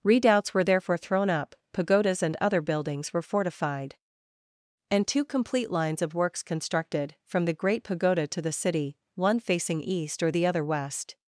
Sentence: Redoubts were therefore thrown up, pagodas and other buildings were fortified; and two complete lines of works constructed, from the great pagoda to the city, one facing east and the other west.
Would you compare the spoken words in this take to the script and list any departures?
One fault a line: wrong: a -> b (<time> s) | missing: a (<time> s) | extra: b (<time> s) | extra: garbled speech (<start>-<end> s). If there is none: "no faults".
wrong: and -> or (10.2 s)